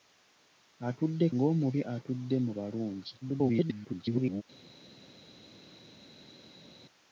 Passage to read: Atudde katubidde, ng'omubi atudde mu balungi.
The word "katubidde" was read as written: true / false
false